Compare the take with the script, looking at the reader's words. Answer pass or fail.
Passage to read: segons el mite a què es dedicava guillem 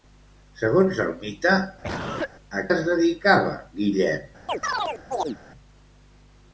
fail